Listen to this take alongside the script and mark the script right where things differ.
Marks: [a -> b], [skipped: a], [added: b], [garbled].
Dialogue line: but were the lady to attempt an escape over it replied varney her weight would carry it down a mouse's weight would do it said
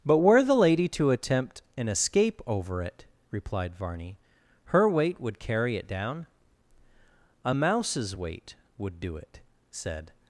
but were the lady to attempt an escape over it replied varney her weight would carry it down a mouse's weight would do it said